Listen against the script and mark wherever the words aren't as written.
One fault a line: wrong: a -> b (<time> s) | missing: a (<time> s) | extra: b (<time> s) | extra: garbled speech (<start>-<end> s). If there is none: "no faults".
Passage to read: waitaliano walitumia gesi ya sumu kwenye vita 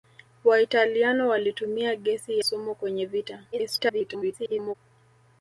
missing: ya (2.4 s)
extra: garbled speech (3.5-4.8 s)